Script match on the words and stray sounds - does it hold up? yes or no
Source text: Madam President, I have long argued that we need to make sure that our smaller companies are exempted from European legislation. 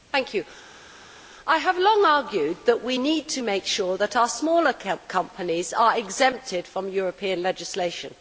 yes